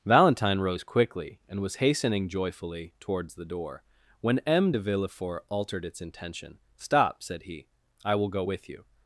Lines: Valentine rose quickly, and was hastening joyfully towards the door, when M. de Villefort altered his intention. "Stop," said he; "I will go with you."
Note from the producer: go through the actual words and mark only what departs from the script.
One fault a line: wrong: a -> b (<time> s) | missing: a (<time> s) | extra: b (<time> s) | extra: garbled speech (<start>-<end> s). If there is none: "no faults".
wrong: his -> its (5.9 s)